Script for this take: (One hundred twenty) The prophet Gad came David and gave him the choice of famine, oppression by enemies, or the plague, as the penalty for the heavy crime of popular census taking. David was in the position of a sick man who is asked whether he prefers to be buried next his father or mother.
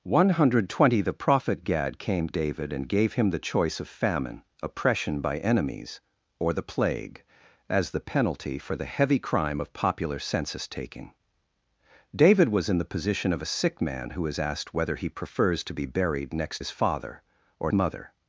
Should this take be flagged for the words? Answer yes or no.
no